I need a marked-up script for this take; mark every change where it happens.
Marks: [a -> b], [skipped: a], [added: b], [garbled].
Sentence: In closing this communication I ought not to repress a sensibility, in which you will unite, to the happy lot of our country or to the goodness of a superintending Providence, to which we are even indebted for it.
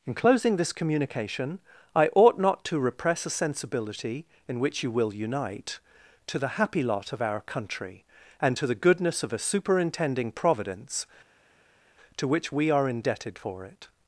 In closing this communication I ought not to repress a sensibility, in which you will unite, to the happy lot of our country [or -> and] to the goodness of a superintending Providence, to which we are [skipped: even] indebted for it.